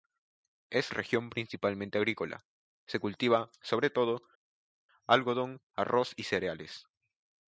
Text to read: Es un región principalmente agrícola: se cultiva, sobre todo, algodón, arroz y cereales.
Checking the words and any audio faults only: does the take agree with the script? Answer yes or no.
no